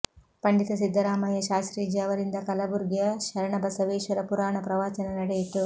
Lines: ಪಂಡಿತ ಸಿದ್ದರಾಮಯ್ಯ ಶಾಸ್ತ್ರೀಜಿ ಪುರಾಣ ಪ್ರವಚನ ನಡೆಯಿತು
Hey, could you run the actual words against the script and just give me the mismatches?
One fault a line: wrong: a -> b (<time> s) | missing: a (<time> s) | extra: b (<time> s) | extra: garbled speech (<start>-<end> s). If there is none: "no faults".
extra: ಅವರಿಂದ ಕಲಬುರ್ಗಿಯ ಶರಣಬಸವೇಶ್ವರ (2.0 s)